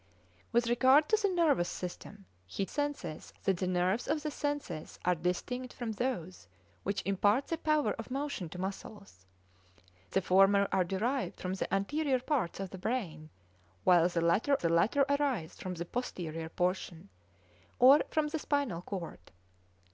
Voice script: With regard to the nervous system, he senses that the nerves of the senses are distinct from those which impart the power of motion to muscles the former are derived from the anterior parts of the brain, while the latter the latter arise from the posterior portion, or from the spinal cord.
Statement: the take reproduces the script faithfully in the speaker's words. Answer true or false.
true